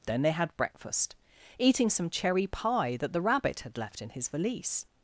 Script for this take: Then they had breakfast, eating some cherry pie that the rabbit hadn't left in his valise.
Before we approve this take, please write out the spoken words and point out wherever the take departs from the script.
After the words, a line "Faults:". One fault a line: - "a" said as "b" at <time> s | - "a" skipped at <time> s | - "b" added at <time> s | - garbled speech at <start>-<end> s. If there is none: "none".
Then they had breakfast, eating some cherry pie that the rabbit had left in his valise.
Faults:
- "hadn't" said as "had" at 3.6 s